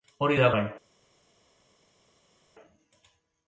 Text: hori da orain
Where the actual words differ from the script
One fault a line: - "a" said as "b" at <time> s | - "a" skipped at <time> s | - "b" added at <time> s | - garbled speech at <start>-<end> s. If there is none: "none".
none